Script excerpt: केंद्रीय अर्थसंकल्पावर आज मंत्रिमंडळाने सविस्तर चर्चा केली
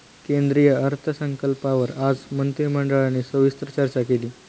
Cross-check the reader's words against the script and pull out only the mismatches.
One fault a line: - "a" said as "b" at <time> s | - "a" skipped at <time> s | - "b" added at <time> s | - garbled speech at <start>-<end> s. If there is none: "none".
none